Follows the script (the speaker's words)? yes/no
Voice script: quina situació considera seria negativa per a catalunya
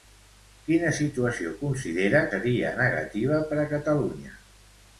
yes